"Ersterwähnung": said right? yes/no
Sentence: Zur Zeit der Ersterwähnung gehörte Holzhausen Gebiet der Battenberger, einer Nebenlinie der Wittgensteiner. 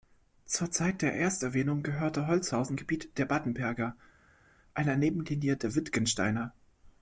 yes